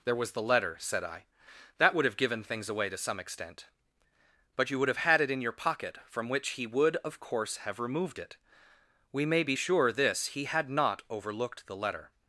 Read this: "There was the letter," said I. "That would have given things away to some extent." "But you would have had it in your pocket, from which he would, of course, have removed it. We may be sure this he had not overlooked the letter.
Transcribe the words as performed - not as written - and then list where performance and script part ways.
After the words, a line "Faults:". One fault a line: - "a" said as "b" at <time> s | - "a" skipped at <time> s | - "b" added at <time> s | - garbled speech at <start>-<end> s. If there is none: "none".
"There was the letter," said I. "That would have given things away to some extent." "But you would have had it in your pocket, from which he would, of course, have removed it. We may be sure this he had not overlooked the letter.
Faults:
none